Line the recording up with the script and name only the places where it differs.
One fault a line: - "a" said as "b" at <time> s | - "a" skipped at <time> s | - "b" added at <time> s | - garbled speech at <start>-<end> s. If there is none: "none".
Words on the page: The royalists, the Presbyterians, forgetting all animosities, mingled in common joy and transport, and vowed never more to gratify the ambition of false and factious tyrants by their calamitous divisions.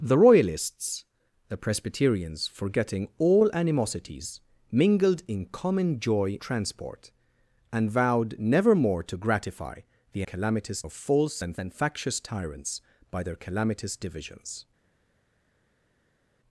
- "and" skipped at 6.4 s
- "ambition" said as "calamitous" at 10.2 s
- "and" added at 11.6 s